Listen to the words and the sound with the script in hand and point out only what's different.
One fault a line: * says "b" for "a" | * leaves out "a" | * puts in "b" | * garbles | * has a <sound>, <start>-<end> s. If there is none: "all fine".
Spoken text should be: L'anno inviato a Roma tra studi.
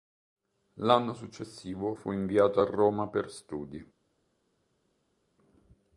* puts in "successivo fu"
* says "per" for "tra"